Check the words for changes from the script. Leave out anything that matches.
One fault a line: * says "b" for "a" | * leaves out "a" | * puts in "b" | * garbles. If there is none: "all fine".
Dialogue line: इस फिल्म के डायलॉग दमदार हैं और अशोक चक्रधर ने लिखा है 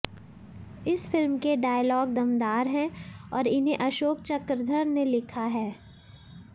* puts in "इन्हें"